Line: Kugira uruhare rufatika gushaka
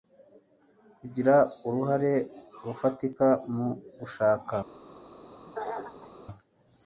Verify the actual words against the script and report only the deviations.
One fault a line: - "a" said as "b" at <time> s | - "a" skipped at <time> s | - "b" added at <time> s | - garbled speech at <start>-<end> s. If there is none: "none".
- "mu" added at 3.5 s